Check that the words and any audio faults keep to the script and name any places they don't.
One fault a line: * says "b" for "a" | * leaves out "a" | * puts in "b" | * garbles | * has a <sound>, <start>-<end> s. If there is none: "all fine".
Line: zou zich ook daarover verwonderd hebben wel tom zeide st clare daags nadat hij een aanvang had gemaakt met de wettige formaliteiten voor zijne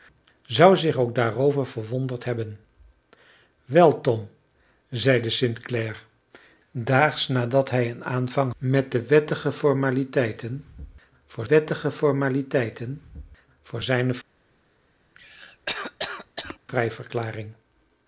* says "met de wettige formaliteiten voor" for "had gemaakt met de"
* has a cough, 15.1-16.6 s